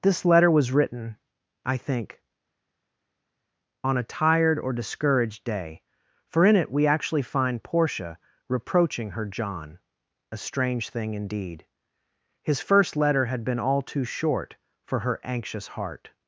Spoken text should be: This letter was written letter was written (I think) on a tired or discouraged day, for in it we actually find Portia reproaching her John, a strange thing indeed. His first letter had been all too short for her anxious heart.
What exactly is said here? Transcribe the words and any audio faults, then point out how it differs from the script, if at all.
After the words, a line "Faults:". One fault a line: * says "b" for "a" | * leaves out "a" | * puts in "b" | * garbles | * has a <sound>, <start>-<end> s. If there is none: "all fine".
This letter was written (I think) on a tired or discouraged day, for in it we actually find Portia reproaching her John, a strange thing indeed. His first letter had been all too short for her anxious heart.
Faults:
* leaves out "letter was written"